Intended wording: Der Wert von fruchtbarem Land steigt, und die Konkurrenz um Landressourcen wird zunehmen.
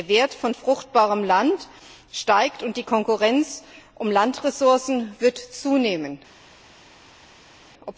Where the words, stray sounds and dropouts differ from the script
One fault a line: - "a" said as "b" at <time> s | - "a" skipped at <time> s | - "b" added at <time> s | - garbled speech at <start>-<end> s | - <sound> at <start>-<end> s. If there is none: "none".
none